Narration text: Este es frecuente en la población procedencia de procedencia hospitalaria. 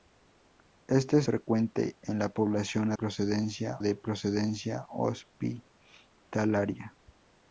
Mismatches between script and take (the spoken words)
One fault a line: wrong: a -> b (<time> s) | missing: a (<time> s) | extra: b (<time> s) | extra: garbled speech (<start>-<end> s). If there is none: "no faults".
no faults